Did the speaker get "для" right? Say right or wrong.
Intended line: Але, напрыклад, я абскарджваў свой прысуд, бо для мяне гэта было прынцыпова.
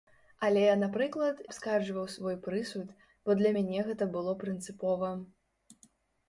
right